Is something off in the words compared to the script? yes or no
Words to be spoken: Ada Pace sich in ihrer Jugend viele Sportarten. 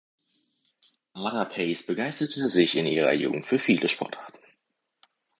yes